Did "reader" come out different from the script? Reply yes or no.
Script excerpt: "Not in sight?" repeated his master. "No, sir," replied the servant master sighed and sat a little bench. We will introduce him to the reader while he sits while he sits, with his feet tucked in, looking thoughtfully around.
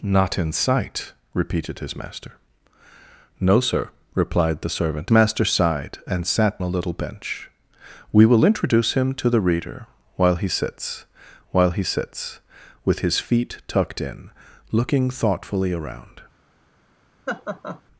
no